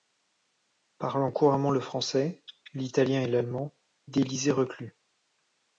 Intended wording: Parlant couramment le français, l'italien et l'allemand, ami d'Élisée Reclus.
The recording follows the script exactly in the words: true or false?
false